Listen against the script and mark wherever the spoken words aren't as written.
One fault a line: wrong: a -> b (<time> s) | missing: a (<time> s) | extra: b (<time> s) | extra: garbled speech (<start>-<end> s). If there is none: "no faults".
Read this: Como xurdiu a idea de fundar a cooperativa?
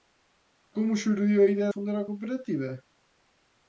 missing: de (1.7 s)